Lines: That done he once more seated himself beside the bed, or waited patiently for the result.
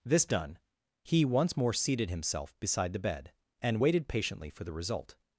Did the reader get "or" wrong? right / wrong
wrong